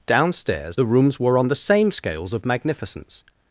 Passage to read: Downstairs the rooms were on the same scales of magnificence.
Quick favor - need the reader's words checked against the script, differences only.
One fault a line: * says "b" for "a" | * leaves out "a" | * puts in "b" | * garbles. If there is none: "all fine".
all fine